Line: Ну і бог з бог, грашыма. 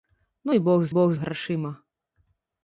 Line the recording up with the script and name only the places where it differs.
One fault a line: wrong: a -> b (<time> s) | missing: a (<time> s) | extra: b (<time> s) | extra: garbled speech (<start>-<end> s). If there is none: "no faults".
no faults